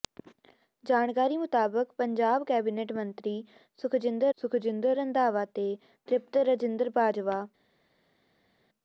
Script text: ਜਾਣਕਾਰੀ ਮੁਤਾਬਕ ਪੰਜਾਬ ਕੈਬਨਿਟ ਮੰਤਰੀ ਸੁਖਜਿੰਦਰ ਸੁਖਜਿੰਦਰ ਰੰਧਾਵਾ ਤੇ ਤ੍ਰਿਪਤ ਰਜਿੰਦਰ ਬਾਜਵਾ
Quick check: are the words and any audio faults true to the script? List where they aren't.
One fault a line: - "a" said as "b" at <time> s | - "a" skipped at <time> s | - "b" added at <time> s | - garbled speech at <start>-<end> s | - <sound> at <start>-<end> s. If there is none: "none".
none